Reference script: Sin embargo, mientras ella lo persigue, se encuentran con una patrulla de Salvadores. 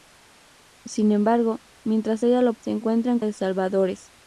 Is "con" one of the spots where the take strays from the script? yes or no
yes